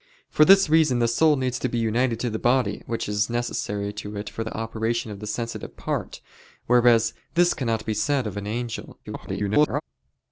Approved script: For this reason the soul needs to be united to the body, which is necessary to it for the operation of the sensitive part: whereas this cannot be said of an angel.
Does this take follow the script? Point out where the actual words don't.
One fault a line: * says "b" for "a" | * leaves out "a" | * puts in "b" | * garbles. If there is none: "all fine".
* garbles